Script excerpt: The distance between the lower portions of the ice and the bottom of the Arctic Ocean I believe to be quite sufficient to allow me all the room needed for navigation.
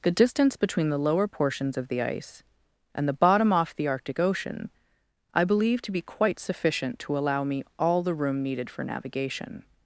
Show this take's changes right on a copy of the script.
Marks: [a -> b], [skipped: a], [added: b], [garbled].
The distance between the lower portions of the ice and the bottom [of -> off] the Arctic Ocean I believe to be quite sufficient to allow me all the room needed for navigation.